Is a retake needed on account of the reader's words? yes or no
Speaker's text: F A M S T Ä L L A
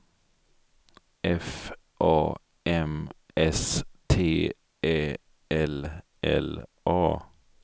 no